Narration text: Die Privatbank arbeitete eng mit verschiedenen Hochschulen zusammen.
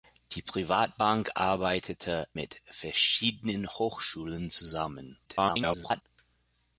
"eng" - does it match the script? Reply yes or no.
no